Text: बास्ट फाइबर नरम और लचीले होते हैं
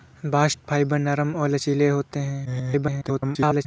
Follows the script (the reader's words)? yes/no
no